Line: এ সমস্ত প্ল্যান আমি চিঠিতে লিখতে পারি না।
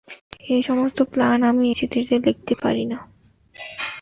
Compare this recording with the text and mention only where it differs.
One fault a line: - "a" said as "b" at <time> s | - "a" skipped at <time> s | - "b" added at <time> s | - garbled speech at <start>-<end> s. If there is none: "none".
none